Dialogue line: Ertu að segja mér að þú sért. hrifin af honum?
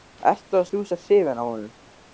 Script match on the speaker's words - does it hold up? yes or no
no